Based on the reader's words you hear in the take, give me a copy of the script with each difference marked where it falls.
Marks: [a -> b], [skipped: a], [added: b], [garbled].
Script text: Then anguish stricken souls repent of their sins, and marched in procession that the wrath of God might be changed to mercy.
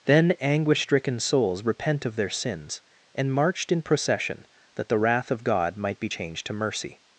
Then anguish stricken souls repent of their sins, and marched in procession that the wrath of God might be changed to mercy.